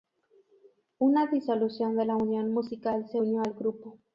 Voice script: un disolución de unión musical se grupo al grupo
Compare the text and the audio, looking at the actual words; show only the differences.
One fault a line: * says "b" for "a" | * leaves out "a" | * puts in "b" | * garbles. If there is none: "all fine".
* says "una" for "un"
* puts in "la"
* says "unió" for "grupo"